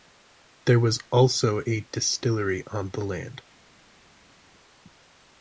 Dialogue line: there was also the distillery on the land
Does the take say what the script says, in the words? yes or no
no